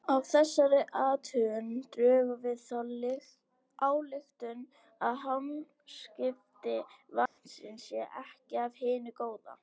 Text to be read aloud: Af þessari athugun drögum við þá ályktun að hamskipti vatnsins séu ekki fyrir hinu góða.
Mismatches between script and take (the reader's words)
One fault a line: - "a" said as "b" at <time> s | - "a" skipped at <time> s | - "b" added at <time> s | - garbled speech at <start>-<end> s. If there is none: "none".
- "fyrir" said as "af" at 8.6 s